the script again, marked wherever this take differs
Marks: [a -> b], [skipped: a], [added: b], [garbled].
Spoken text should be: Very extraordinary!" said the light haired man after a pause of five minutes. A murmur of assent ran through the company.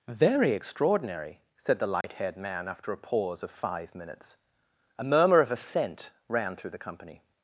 Very extraordinary!" said the light haired man after a pause of five minutes. A murmur of assent ran through the company.